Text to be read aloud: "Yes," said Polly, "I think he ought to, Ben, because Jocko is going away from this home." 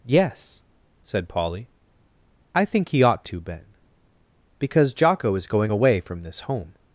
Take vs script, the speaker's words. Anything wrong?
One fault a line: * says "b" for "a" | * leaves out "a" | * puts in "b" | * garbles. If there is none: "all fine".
all fine